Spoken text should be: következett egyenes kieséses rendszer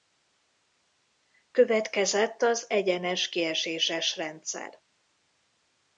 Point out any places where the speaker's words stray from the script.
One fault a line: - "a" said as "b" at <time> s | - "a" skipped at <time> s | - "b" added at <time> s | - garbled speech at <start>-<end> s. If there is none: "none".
- "az" added at 2.4 s